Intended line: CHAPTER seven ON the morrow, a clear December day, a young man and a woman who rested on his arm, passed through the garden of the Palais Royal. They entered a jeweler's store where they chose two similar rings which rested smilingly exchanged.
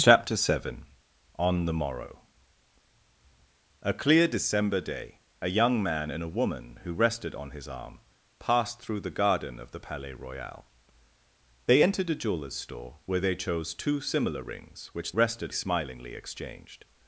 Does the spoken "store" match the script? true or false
true